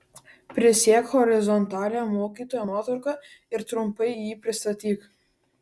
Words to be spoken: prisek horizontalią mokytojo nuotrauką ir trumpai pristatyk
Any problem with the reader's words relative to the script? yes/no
yes